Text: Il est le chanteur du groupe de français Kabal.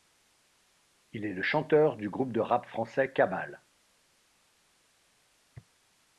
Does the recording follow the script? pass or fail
fail